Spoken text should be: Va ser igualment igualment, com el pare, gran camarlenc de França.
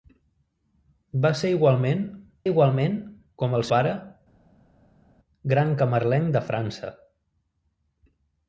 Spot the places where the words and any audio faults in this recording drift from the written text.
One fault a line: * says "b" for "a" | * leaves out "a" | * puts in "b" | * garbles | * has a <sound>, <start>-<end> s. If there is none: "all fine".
all fine